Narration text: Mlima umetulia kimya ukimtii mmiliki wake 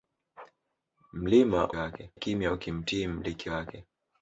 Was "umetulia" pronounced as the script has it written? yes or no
no